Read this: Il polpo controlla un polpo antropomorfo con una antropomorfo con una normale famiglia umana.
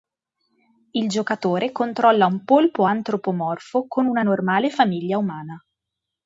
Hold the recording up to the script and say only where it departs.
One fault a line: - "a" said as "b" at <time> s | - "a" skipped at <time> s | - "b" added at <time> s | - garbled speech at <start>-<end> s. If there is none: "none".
- "polpo" said as "giocatore" at 1.1 s
- "antropomorfo con una" skipped at 4.2 s